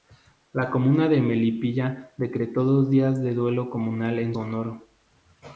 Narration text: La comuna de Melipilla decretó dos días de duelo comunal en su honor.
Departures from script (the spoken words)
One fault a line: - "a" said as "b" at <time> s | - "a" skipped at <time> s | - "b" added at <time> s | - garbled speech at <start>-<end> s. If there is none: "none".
- "su" skipped at 4.3 s